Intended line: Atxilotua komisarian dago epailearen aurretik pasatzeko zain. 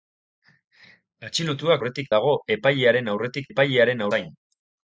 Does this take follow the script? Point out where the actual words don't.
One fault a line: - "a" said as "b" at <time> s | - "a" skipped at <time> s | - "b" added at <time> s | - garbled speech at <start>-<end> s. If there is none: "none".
- "komisarian" said as "aurretik" at 1.8 s
- "pasatzeko" said as "epailearen" at 3.5 s